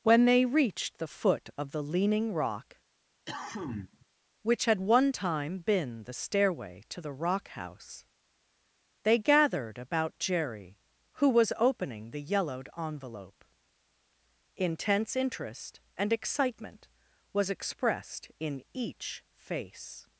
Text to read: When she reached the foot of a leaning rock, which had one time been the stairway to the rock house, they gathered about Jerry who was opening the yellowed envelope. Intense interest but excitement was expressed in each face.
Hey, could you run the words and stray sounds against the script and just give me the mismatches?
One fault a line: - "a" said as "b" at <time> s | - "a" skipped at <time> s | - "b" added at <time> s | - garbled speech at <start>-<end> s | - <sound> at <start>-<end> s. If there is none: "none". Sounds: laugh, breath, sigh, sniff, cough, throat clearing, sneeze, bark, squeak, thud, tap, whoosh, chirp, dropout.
- "she" said as "they" at 0.2 s
- "a" said as "the" at 1.7 s
- cough at 3.3-4.1 s
- "but" said as "and" at 16.0 s